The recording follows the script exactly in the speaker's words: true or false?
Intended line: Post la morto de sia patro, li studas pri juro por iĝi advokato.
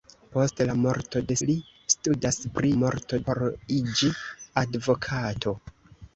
false